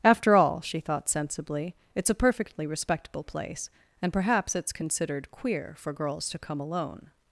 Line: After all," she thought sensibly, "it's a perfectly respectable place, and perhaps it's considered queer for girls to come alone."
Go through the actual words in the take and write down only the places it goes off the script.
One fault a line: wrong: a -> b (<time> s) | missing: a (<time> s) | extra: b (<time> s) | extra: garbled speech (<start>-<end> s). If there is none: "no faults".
no faults